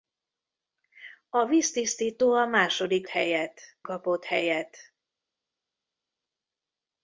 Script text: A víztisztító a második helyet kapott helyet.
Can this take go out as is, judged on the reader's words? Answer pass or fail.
pass